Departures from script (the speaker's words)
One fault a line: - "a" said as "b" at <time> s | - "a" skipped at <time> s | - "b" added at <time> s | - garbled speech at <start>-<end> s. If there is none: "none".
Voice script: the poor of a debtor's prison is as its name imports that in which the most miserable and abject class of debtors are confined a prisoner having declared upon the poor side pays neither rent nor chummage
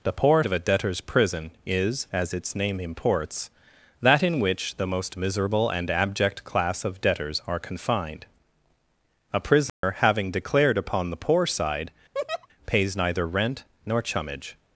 none